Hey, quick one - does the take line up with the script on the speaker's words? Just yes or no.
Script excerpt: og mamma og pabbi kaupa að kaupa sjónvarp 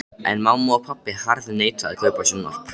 no